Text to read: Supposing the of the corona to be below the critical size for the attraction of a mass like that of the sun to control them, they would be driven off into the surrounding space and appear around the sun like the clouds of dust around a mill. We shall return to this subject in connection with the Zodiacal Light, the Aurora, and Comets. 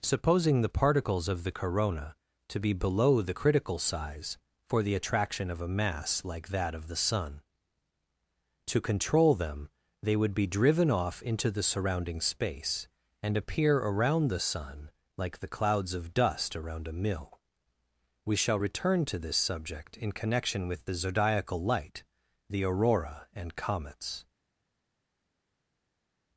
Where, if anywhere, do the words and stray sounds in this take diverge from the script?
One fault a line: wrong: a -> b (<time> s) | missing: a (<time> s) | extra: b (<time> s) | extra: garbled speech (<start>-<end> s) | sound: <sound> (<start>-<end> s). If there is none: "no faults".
extra: particles (0.7 s)